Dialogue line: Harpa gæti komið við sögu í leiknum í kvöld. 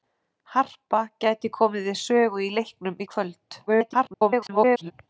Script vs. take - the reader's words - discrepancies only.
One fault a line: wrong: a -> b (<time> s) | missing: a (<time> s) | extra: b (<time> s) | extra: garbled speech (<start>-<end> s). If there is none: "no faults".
extra: garbled speech (3.7-4.9 s)